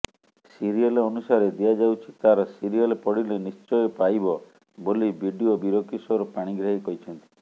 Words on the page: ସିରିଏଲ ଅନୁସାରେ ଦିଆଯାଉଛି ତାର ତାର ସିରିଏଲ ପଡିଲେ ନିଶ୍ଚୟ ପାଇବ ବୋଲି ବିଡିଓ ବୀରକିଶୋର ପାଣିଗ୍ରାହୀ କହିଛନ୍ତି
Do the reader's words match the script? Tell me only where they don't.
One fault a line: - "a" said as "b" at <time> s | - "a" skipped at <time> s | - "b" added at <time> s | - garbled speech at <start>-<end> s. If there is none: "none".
- "ତାର" skipped at 2.5 s